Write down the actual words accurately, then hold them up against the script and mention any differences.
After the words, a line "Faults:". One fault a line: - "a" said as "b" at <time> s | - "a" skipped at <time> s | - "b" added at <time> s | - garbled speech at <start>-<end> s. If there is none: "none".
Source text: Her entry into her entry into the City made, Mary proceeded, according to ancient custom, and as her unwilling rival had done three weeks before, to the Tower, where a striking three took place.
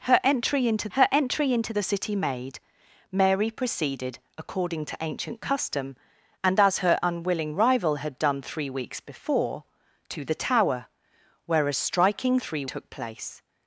Her entry into her entry into the City made, Mary proceeded, according to ancient custom, and as her unwilling rival had done three weeks before, to the Tower, where a striking three took place.
Faults:
none